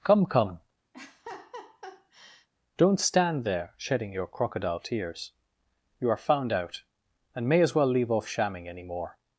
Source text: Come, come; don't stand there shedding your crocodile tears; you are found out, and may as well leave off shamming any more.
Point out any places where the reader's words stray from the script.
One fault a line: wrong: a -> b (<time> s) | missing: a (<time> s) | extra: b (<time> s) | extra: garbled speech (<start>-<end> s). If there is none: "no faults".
no faults